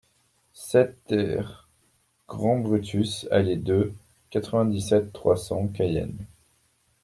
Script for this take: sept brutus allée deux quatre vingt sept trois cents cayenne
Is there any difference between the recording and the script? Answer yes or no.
yes